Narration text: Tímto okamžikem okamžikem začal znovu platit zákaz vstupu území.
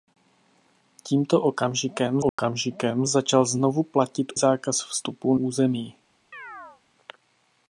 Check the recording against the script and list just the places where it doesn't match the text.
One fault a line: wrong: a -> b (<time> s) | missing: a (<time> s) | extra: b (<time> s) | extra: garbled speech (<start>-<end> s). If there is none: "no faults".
no faults